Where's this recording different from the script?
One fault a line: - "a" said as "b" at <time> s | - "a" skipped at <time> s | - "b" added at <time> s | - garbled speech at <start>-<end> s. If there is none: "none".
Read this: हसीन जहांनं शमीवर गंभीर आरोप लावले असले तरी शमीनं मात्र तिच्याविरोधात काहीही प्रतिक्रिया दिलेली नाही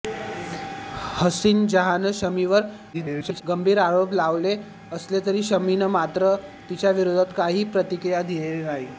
- garbled speech at 2.9-3.4 s